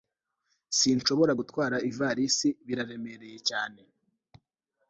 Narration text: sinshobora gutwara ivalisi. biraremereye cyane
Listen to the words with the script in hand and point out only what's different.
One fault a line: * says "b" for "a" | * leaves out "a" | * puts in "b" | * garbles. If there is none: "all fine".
all fine